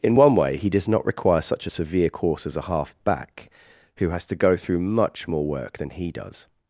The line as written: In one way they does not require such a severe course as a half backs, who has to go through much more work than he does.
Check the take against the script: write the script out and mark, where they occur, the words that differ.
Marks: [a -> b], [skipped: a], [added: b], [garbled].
In one way [they -> he] does not require such a severe course as a half [backs, -> back] who has to go through much more work than he does.